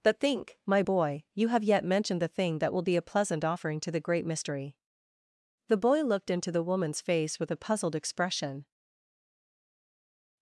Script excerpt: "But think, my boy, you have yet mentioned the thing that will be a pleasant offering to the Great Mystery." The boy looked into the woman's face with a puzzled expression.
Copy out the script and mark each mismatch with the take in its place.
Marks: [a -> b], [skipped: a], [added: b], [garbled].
"But think, my boy, you have yet mentioned the thing that will be a pleasant offering to the Great Mystery." The boy looked into the woman's face with a puzzled expression.